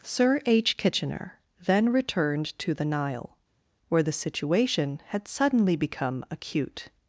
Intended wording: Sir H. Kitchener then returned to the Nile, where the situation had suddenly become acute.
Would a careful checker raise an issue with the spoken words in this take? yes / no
no